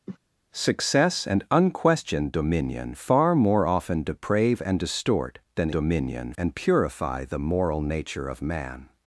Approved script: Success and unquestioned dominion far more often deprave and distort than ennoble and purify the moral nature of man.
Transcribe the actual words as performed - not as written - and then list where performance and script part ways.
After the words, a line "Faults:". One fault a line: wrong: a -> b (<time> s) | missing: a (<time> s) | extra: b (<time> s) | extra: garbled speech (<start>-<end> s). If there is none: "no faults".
Success and unquestioned dominion far more often deprave and distort than dominion and purify the moral nature of man.
Faults:
wrong: ennoble -> dominion (5.7 s)